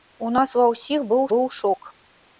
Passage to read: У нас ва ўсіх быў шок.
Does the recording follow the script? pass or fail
fail